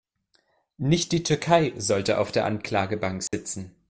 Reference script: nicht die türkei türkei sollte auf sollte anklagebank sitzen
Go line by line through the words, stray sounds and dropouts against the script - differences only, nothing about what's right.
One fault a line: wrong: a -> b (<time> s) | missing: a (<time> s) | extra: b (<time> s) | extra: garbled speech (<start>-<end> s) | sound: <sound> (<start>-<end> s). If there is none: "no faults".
missing: türkei (1.7 s)
wrong: sollte -> der (2.3 s)
sound: dropout (3.3-3.3 s)